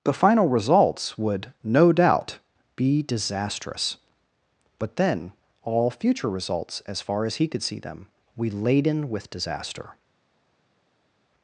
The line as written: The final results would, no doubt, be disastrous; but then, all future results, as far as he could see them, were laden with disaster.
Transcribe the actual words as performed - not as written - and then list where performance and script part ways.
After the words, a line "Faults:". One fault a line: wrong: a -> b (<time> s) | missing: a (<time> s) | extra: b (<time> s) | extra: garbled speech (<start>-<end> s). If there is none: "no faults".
The final results would, no doubt, be disastrous; but then, all future results, as far as he could see them, we laden with disaster.
Faults:
wrong: were -> we (8.4 s)